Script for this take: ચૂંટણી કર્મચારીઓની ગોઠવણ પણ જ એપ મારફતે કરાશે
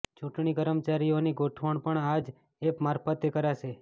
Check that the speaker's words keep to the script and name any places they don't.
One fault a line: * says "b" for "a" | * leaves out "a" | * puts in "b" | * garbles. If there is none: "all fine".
* puts in "આ"